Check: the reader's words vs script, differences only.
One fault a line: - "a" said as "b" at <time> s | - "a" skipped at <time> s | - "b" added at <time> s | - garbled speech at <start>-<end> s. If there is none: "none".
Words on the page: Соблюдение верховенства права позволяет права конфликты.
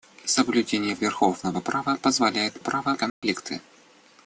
none